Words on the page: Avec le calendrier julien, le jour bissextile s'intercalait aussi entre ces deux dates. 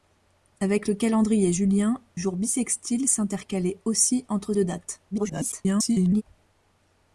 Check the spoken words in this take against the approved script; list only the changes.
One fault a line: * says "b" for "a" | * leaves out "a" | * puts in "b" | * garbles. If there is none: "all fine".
* leaves out "le"
* leaves out "ces"
* garbles